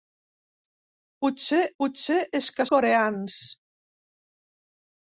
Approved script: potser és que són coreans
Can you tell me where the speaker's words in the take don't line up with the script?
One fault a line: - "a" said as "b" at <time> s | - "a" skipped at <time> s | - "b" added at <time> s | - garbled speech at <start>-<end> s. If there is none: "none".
- "potser" added at 1.8 s
- "són" skipped at 2.7 s